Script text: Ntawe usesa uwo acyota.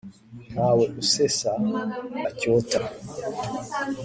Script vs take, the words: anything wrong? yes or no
yes